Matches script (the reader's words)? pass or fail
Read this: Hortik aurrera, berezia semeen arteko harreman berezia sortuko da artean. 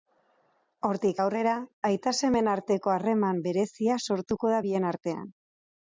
fail